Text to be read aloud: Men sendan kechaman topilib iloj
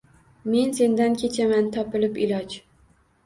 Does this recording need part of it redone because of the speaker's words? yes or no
no